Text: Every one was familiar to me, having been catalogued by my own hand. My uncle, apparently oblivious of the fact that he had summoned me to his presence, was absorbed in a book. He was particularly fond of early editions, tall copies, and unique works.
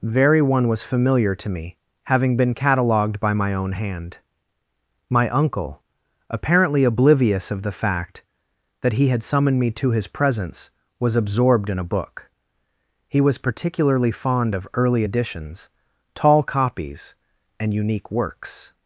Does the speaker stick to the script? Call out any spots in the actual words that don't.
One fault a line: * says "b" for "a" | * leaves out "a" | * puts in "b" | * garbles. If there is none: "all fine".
* says "Very" for "Every"